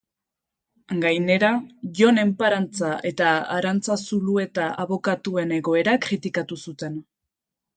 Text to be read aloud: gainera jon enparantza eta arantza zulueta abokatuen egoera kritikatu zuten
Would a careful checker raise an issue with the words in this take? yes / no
no